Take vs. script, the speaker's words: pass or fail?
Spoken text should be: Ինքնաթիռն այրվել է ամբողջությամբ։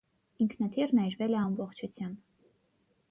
pass